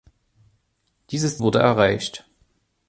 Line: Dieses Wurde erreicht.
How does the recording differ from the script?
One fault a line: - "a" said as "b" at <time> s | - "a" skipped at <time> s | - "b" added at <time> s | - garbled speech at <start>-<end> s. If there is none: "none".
none